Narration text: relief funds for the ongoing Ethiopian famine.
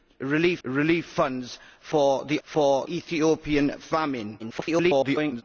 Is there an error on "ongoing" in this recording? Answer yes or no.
yes